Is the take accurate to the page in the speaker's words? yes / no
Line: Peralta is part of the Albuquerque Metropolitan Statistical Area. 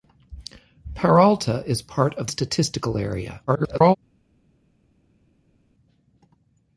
no